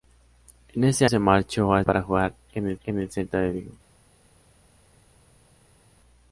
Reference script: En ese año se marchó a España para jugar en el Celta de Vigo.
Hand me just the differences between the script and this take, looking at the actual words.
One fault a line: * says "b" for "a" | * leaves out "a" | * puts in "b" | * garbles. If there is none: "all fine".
* leaves out "año"
* leaves out "España"
* puts in "en el"